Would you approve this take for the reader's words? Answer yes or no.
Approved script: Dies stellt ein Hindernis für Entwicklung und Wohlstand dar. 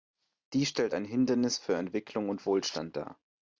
yes